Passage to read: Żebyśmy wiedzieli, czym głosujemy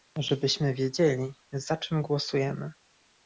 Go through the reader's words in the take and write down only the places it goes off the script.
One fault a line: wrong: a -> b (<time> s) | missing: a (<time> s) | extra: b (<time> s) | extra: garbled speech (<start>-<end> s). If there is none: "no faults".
extra: za (1.5 s)